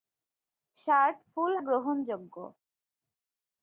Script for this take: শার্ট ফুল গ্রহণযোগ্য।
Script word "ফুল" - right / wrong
right